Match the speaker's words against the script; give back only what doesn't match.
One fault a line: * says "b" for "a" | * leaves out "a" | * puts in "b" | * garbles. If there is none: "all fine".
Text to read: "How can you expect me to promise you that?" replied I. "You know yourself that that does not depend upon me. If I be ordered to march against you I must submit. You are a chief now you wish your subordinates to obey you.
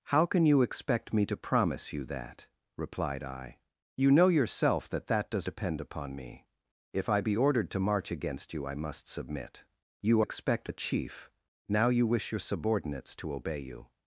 * leaves out "not"
* says "expect" for "are"